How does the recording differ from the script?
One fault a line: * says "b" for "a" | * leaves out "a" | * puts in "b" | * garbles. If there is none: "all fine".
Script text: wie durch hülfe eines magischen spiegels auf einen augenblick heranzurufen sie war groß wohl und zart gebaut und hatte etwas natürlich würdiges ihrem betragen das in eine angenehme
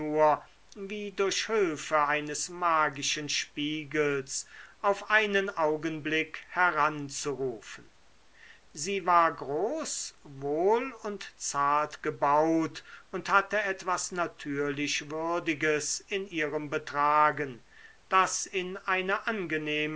* puts in "in"